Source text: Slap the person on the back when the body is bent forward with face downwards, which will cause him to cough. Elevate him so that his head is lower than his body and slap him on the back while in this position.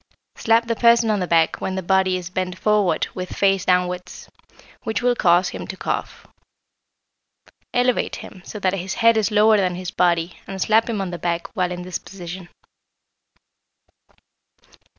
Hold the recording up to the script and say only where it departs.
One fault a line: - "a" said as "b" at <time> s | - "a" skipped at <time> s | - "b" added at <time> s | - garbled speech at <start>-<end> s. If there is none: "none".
none